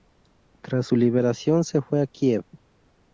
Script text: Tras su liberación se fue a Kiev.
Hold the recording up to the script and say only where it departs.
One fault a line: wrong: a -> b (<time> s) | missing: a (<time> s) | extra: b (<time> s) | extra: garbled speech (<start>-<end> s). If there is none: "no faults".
no faults